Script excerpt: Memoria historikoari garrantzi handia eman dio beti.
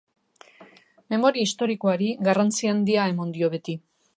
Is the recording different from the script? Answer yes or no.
no